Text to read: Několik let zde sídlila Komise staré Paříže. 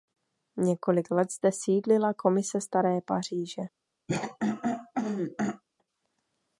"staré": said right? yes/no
yes